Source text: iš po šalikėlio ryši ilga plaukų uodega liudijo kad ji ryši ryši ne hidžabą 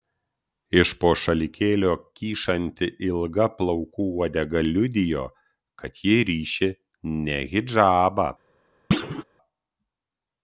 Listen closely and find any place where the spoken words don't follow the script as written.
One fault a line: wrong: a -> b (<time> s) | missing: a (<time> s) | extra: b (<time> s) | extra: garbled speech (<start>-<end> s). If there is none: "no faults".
wrong: ryši -> kyšanti (2.2 s)
missing: ryši (6.7 s)